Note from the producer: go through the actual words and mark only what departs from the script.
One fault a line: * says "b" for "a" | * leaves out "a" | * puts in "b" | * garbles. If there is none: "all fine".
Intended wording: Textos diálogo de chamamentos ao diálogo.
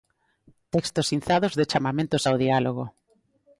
* says "inzados" for "diálogo"